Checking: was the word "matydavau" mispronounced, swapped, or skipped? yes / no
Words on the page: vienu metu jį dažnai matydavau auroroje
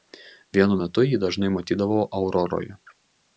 no